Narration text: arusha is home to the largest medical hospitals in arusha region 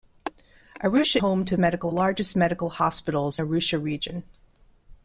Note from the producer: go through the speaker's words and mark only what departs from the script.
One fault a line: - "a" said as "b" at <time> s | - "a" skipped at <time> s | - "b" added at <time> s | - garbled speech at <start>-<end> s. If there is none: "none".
- "is" skipped at 1.2 s
- "the" said as "medical" at 1.6 s
- "in" skipped at 3.4 s